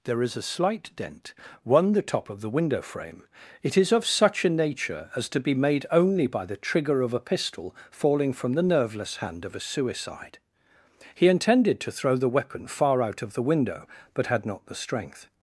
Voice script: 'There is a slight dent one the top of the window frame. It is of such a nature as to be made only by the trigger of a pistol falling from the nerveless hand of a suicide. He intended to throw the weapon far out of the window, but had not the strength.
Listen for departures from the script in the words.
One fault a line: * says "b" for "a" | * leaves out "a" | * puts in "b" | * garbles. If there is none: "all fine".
all fine